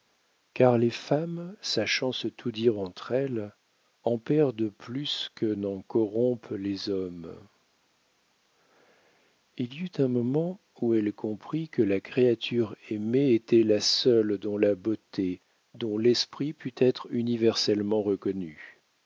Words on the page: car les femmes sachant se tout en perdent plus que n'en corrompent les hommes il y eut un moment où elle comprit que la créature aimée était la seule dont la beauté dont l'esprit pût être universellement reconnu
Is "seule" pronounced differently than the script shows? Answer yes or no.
no